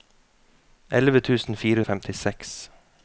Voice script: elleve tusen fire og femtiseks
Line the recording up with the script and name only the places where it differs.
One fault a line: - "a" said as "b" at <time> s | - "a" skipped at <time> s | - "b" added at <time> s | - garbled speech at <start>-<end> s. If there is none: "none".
none